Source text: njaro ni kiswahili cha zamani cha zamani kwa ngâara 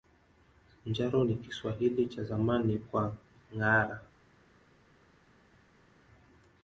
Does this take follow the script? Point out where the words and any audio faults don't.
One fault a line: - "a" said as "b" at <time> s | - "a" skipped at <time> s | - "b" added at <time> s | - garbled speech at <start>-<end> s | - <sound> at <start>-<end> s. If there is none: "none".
- "cha zamani" skipped at 2.8 s